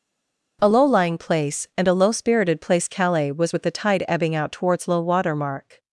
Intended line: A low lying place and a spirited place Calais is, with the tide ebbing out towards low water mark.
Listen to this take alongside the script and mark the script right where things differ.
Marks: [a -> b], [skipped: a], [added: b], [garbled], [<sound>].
A low lying place and a [added: low] spirited place Calais [is, -> was] with the tide ebbing out towards low water mark.